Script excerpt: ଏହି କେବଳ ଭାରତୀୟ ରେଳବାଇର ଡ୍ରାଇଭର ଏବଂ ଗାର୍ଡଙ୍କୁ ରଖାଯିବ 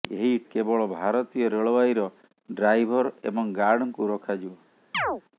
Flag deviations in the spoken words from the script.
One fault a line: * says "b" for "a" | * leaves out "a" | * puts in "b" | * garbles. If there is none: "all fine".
all fine